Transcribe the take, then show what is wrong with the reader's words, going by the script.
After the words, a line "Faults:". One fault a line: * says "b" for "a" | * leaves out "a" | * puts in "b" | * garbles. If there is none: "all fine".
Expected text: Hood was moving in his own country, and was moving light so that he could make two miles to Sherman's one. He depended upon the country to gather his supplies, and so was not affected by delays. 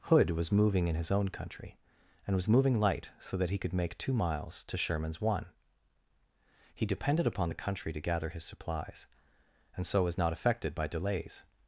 Hood was moving in his own country, and was moving light so that he could make two miles to Sherman's one. He depended upon the country to gather his supplies, and so was not affected by delays.
Faults:
all fine